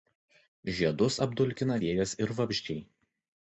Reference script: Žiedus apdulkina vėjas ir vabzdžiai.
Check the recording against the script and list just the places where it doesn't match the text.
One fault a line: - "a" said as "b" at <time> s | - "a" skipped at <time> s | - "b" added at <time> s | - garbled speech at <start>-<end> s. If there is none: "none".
none